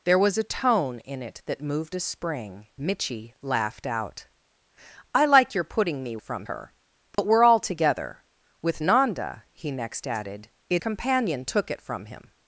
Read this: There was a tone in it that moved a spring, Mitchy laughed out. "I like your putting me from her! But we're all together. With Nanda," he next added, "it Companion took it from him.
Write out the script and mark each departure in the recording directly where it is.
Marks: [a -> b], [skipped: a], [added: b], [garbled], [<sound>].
There was a tone in it that moved a spring, Mitchy laughed out. "I like your putting me from her! But [dropout] we're all together. With Nanda," he next added, "it Companion took it from him.